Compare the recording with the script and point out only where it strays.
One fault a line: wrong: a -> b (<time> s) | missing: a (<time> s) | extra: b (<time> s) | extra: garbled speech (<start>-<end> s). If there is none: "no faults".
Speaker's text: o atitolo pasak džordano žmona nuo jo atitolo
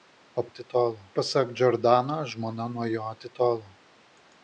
no faults